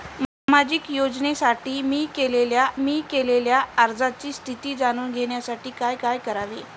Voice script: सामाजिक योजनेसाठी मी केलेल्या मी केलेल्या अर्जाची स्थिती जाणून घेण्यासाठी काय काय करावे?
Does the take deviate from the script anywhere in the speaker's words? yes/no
no